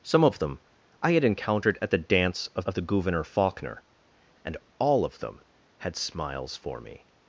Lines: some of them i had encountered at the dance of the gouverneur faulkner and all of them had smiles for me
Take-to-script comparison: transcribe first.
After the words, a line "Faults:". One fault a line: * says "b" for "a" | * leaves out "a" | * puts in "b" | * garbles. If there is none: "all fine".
some of them i had encountered at the dance of of the gouverneur faulkner and all of them had smiles for me
Faults:
* puts in "of"